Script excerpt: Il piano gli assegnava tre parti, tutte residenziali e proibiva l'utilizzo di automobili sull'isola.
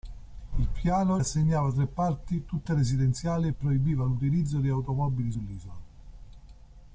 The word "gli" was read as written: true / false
false